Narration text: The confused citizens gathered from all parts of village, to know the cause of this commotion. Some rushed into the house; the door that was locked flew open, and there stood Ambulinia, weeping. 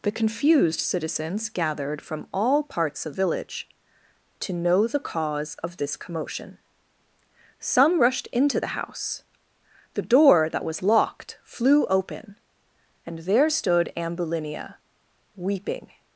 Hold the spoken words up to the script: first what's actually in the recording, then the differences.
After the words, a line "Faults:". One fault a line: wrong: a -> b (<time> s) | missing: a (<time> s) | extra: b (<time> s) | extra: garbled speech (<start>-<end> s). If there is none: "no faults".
The confused citizens gathered from all parts of village, to know the cause of this commotion. Some rushed into the house; the door that was locked flew open, and there stood Ambulinia, weeping.
Faults:
no faults